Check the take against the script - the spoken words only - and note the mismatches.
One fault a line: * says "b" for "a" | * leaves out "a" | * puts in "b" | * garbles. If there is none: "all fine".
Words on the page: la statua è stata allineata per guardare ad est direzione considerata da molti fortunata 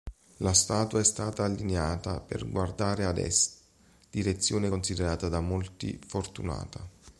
all fine